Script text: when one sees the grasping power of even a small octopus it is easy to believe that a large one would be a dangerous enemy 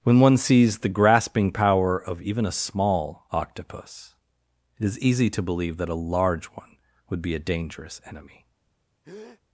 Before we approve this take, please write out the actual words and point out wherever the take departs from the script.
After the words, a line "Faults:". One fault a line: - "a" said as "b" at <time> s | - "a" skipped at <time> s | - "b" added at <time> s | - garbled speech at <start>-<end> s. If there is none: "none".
when one sees the grasping power of even a small octopus it is easy to believe that a large one would be a dangerous enemy
Faults:
none